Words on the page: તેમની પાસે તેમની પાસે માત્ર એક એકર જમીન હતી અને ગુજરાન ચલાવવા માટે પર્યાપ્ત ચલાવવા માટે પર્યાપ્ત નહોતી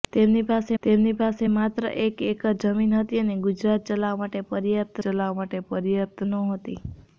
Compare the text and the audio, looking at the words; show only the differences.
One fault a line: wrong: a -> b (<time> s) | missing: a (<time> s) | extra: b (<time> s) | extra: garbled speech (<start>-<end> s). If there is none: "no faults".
no faults